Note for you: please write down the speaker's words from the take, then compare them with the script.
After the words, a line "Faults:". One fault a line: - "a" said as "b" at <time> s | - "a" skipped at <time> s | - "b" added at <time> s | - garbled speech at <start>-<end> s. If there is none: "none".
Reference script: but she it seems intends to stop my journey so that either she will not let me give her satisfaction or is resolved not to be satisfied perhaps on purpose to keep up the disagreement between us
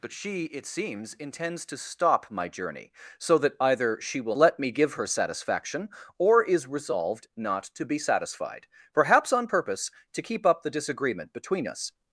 but she it seems intends to stop my journey so that either she will let me give her satisfaction or is resolved not to be satisfied perhaps on purpose to keep up the disagreement between us
Faults:
- "not" skipped at 4.3 s